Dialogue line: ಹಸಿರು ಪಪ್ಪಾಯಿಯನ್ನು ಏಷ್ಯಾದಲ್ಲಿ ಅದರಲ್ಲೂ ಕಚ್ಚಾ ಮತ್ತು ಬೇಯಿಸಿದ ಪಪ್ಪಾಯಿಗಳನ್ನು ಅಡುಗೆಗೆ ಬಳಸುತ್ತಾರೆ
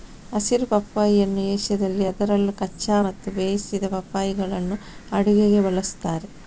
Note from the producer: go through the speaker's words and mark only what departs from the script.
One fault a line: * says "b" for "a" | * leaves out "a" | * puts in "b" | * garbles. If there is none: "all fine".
all fine